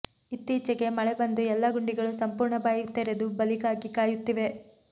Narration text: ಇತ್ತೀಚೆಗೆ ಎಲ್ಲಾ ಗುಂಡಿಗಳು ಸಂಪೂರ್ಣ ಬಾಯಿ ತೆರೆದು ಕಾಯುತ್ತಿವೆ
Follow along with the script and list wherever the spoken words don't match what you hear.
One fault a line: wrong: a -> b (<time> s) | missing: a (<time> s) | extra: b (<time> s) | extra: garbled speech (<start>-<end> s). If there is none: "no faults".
extra: ಮಳೆ ಬಂದು (0.9 s)
extra: ಬಲಿಗಾಗಿ (3.4 s)